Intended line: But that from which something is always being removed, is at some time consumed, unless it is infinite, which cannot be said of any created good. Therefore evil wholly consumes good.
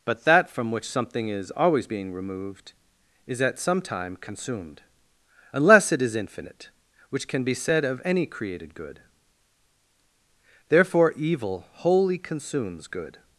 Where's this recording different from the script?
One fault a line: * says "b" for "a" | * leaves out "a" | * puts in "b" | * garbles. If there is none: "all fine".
* says "can" for "cannot"